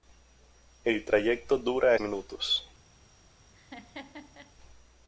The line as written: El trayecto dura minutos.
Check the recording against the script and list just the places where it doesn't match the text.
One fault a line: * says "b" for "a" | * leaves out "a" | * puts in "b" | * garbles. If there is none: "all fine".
all fine